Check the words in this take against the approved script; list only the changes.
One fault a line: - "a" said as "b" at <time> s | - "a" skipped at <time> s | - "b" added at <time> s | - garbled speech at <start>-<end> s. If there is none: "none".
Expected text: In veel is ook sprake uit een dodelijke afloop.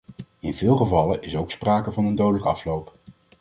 - "gevallen" added at 0.8 s
- "uit" said as "van" at 1.9 s